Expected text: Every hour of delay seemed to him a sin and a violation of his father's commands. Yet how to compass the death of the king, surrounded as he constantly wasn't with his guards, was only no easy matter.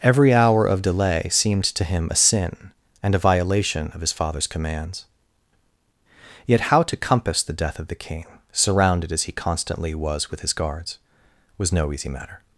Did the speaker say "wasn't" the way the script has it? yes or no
no